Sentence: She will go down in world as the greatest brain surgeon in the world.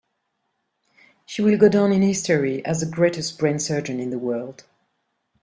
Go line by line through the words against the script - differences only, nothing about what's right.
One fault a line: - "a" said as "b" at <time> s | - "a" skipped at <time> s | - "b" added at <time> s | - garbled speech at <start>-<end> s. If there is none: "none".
- "world" said as "history" at 2.0 s